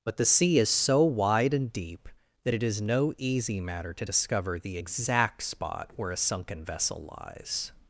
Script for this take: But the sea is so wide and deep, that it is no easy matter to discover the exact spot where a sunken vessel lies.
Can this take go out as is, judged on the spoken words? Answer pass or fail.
pass